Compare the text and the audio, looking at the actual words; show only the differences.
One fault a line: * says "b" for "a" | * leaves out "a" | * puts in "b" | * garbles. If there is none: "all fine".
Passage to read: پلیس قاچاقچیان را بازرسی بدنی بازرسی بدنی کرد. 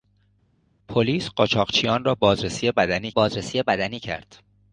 all fine